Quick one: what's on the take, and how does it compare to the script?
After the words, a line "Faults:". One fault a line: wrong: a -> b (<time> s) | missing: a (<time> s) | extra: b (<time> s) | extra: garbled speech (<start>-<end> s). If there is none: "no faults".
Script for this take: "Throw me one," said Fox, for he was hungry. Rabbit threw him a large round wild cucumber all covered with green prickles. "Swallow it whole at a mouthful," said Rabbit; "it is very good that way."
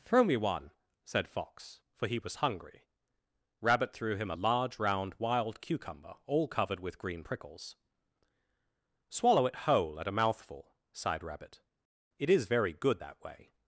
"Throw me one," said Fox, for he was hungry. Rabbit threw him a large round wild cucumber all covered with green prickles. "Swallow it whole at a mouthful," sighed Rabbit; "it is very good that way."
Faults:
wrong: said -> sighed (10.9 s)